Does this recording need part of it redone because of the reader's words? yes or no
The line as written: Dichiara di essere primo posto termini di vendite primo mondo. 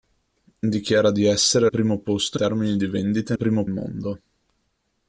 no